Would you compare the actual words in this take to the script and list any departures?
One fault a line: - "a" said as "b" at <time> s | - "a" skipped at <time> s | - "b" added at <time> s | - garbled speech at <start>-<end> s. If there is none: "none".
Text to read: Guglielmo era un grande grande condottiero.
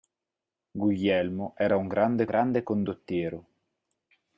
none